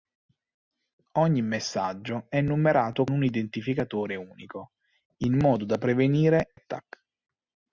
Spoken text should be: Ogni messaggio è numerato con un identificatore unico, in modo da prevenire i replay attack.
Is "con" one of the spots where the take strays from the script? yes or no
yes